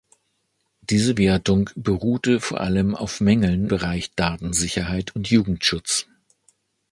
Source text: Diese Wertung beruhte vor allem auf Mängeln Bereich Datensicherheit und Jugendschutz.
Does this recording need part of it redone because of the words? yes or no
no